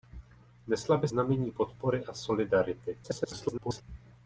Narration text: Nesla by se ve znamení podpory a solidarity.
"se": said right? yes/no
no